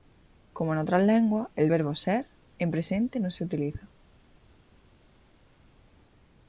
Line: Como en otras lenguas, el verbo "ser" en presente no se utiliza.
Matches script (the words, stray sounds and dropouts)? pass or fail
pass